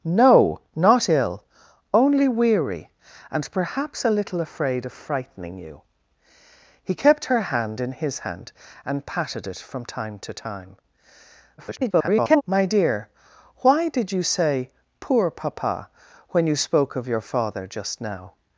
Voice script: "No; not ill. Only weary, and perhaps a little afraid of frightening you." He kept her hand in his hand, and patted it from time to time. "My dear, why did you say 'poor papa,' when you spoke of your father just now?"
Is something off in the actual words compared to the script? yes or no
yes